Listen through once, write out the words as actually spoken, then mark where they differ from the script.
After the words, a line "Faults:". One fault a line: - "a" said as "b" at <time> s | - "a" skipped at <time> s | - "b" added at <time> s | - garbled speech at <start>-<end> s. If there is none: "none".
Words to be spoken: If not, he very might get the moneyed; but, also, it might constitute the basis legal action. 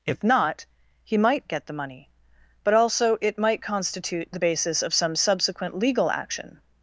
If not, he might get the money; but, also, it might constitute the basis of some subsequent legal action.
Faults:
- "very" skipped at 1.1 s
- "moneyed" said as "money" at 1.7 s
- "of some subsequent" added at 4.8 s